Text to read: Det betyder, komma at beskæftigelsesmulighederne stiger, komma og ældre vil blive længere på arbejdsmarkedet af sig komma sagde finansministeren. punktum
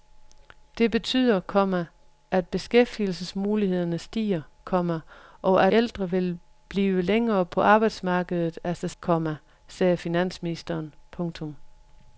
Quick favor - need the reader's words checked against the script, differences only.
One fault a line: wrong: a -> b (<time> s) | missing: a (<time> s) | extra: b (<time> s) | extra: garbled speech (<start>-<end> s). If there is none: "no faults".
no faults